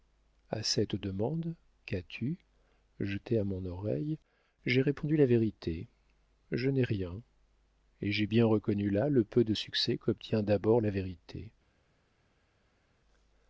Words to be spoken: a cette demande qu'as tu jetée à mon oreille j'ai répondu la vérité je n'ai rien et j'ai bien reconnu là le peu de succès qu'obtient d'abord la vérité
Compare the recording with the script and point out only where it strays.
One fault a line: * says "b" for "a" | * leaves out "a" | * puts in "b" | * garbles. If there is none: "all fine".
all fine